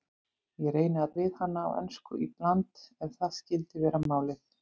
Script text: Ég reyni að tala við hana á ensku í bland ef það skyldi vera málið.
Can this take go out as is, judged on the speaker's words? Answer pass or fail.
fail